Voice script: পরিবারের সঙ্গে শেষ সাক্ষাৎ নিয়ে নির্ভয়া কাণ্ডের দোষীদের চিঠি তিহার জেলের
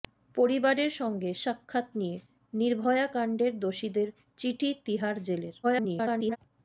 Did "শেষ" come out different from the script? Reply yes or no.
yes